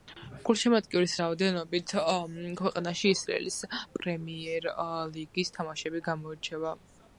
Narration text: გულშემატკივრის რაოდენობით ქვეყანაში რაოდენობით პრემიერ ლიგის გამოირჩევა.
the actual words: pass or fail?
fail